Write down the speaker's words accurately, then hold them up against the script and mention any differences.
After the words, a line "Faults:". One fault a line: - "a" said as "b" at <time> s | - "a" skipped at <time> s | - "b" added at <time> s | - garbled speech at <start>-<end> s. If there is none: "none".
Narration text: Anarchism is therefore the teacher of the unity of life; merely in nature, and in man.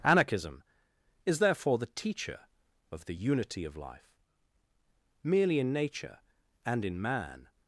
Anarchism is therefore the teacher of the unity of life; merely in nature, and in man.
Faults:
none